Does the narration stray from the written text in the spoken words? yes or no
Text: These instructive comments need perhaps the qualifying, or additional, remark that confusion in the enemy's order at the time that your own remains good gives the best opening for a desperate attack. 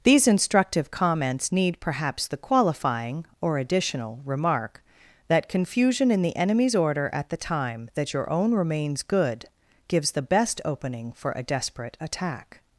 no